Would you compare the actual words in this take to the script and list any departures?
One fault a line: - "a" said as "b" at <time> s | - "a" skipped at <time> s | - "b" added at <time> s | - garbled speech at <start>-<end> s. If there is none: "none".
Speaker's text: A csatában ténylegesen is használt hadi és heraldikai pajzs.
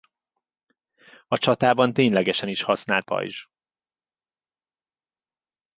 - "hadi és heraldikai" skipped at 3.1 s